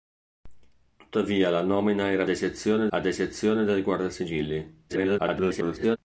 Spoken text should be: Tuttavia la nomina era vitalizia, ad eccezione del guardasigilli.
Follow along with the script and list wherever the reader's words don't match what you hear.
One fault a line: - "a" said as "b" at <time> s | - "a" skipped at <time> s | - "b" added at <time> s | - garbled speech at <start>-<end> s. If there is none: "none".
- "vitalizia" said as "eccezione" at 2.3 s
- garbled speech at 4.9-6.0 s